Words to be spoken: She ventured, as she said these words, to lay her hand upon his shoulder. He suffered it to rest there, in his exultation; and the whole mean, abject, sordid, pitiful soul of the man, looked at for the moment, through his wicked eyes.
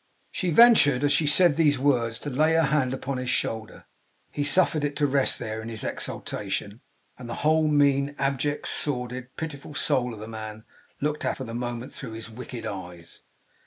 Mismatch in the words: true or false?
false